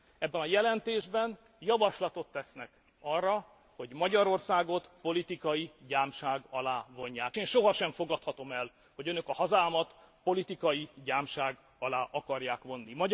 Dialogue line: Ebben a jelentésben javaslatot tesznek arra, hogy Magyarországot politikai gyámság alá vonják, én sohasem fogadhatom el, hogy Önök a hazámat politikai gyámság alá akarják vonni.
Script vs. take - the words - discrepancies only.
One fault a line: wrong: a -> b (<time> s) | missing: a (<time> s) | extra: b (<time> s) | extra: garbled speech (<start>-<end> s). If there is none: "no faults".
no faults